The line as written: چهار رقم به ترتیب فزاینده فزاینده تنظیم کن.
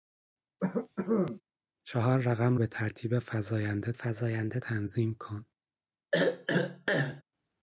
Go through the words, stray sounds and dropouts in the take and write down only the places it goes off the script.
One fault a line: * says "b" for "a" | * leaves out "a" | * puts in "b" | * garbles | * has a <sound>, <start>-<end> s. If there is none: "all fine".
* has a cough, 0.6-1.4 s
* has a throat clearing, 6.1-7.2 s